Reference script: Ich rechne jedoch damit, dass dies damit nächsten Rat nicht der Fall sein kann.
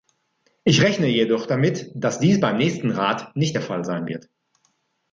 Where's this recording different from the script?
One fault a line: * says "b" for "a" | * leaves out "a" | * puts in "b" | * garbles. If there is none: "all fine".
* says "beim" for "damit"
* says "wird" for "kann"